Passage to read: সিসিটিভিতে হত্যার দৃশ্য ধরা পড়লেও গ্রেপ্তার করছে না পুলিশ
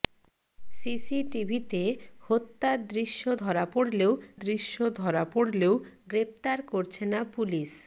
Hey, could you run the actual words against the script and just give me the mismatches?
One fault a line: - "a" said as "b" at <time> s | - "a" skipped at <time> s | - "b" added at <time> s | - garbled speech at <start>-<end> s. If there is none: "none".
- "দৃশ্য ধরা পড়লেও" added at 4.4 s